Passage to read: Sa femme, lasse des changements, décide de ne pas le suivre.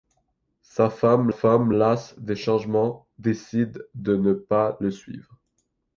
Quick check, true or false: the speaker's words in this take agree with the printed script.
false